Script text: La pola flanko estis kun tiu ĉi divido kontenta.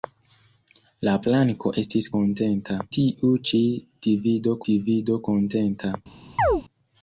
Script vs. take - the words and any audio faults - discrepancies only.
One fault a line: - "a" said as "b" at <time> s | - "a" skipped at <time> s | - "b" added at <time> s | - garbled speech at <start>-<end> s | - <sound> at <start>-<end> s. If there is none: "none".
- "pola" skipped at 1.1 s
- "kun" said as "kontenta" at 2.2 s
- "divido" added at 4.7 s
- chirp at 6.4-6.6 s